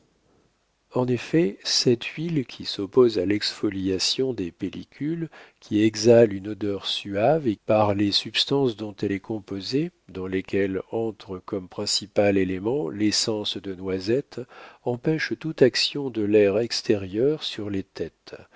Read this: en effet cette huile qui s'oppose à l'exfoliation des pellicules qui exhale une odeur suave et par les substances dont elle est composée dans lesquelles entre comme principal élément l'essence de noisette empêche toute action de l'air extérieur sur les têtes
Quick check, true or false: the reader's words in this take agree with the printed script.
true